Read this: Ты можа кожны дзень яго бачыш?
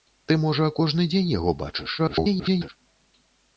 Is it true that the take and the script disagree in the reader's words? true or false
true